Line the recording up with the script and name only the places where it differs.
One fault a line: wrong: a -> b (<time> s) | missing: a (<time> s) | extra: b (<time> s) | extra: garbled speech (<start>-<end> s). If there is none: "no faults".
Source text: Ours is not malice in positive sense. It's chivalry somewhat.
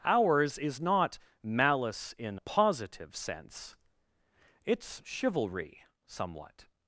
no faults